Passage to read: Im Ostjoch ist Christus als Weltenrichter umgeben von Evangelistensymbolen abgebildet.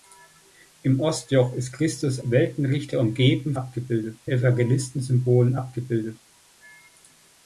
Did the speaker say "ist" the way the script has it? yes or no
yes